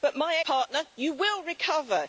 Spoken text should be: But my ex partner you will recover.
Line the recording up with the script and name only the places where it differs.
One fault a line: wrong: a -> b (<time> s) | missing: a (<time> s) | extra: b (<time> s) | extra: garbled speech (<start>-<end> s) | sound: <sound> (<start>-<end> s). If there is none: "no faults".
missing: ex (0.4 s)